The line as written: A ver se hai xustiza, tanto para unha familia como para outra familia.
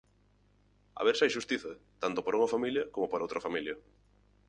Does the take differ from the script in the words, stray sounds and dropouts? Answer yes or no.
no